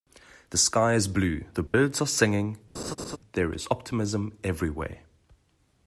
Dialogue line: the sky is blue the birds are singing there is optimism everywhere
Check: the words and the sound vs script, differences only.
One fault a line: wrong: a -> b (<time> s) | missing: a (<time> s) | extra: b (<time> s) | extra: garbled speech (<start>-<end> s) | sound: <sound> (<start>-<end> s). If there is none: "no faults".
sound: dropout (1.7-1.7 s)
sound: laugh (2.7-3.2 s)